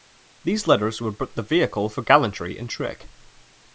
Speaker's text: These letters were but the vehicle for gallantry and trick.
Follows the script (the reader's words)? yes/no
yes